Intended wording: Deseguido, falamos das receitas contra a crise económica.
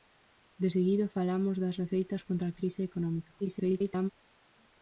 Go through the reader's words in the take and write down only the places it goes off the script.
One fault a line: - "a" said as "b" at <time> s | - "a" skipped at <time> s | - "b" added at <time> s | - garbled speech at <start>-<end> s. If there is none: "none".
- garbled speech at 3.4-4.1 s